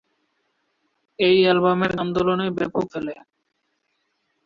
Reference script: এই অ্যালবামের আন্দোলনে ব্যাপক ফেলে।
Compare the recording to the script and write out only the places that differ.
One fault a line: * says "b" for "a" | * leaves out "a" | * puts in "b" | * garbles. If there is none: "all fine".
all fine